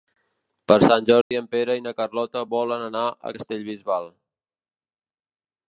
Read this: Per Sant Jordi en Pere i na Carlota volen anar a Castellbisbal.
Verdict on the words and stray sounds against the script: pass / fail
fail